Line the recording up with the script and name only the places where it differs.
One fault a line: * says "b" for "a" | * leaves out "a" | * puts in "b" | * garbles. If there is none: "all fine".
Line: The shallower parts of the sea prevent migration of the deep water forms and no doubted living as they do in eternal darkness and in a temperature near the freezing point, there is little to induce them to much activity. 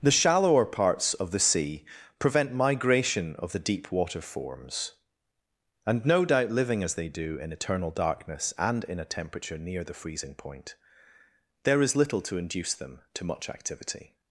* says "doubt" for "doubted"